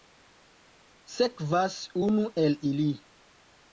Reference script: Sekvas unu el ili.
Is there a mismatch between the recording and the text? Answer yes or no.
no